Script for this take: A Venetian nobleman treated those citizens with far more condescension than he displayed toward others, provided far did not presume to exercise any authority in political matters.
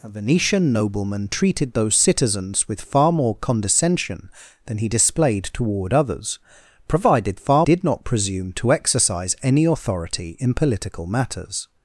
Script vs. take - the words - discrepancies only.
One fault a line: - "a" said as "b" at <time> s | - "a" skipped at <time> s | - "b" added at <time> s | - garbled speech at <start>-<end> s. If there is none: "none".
none